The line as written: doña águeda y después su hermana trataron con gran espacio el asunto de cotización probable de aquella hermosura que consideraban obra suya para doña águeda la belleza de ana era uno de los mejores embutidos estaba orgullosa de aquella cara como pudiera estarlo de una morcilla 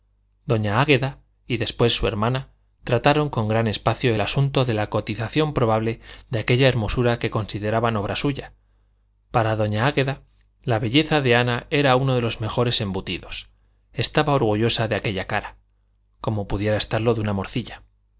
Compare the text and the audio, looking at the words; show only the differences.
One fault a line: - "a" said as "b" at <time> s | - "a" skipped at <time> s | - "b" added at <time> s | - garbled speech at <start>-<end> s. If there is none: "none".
- "la" added at 4.8 s